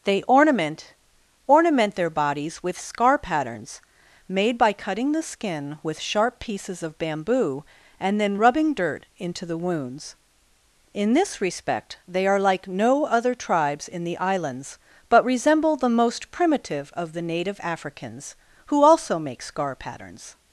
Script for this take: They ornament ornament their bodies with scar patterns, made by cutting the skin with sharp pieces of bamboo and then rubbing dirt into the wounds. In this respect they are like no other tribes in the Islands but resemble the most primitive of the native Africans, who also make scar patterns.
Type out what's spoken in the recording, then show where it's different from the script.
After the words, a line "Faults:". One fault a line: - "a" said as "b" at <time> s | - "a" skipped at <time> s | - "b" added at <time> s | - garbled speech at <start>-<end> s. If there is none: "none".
They ornament ornament their bodies with scar patterns, made by cutting the skin with sharp pieces of bamboo and then rubbing dirt into the wounds. In this respect they are like no other tribes in the Islands but resemble the most primitive of the native Africans, who also make scar patterns.
Faults:
none